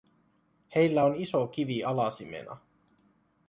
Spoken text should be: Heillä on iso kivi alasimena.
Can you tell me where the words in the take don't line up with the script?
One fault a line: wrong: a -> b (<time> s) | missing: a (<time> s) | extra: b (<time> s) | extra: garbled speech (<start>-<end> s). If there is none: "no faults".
no faults